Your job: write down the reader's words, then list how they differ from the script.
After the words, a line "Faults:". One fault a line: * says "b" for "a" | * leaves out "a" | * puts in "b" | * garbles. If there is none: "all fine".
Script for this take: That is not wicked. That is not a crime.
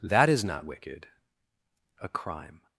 That is not wicked. A crime.
Faults:
* leaves out "That is not"